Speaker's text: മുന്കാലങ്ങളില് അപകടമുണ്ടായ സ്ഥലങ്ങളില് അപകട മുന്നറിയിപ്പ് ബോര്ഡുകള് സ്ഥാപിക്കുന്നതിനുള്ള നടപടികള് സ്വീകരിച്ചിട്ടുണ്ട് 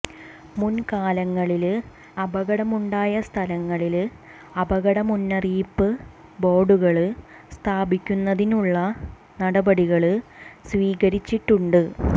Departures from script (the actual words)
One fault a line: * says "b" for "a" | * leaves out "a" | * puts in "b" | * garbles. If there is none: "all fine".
all fine